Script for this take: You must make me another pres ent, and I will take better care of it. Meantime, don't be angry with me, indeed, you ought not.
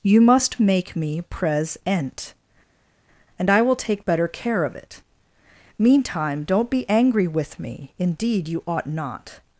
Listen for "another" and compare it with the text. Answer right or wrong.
wrong